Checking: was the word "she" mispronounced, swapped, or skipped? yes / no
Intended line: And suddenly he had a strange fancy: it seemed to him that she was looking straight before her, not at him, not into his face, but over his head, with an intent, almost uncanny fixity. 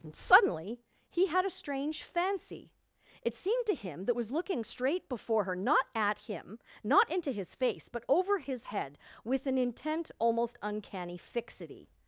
yes